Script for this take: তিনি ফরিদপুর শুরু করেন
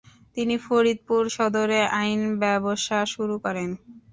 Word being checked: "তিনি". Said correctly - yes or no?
yes